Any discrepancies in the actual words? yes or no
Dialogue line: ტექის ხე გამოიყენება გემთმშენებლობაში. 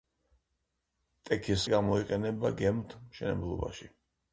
yes